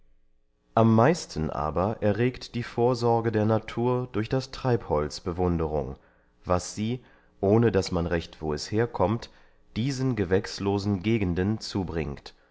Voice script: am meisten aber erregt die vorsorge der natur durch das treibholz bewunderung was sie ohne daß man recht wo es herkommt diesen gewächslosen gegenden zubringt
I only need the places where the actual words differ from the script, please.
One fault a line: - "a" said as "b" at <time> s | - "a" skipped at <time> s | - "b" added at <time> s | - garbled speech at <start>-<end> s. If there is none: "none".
none